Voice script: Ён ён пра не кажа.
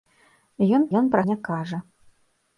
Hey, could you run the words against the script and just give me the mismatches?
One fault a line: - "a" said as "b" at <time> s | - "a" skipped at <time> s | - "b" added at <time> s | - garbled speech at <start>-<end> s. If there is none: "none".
none